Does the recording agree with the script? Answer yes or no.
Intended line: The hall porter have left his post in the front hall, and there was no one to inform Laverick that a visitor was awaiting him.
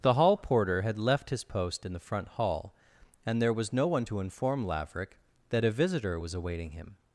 no